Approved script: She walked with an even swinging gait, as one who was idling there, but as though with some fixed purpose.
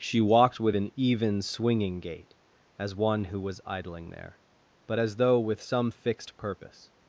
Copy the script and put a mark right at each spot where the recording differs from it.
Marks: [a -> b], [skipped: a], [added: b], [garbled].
She walked with an even swinging gait, as one who was idling there, but as though with some fixed purpose.